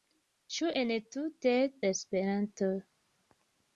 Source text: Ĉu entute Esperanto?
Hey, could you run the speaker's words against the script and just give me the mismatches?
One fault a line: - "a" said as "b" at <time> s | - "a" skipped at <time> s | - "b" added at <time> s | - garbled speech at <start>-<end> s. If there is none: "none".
none